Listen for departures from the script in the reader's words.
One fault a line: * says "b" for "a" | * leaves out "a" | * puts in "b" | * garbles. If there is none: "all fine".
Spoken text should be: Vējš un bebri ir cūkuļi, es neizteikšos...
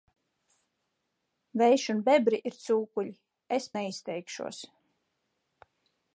all fine